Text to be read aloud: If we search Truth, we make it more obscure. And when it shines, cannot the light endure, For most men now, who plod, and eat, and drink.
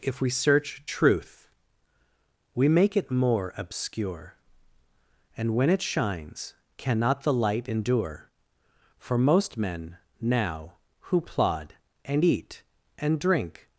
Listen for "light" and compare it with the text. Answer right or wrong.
right